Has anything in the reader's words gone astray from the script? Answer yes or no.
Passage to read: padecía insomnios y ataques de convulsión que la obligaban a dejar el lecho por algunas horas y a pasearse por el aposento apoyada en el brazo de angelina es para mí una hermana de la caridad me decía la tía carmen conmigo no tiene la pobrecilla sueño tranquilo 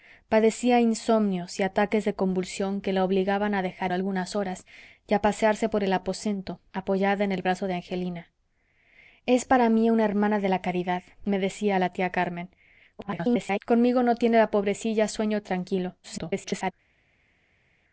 yes